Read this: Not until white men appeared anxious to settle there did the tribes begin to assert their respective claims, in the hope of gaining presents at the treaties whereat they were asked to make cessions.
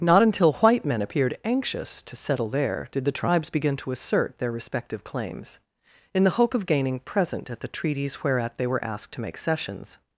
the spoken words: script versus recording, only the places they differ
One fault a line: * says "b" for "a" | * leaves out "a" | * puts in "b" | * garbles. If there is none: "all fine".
* says "present" for "presents"